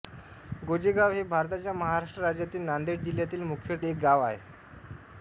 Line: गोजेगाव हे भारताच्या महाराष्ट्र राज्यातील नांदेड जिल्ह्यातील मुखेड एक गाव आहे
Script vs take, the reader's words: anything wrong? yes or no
no